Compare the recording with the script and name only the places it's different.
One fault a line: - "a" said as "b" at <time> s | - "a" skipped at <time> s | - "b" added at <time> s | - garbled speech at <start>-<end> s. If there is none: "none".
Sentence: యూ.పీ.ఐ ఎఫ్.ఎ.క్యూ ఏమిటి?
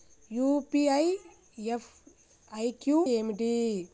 none